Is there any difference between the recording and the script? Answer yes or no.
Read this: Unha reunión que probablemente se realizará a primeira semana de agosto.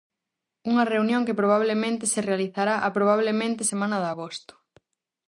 yes